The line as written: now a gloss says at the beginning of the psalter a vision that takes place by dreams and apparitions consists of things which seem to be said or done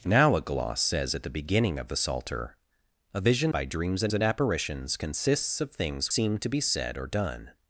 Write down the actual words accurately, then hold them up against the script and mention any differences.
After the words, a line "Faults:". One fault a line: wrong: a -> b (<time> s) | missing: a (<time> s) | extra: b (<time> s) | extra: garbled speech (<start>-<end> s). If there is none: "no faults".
now a gloss says at the beginning of the psalter a vision by dreams and and apparitions consists of things seem to be said or done
Faults:
missing: that takes place (3.5 s)
extra: and (4.1 s)
missing: which (6.1 s)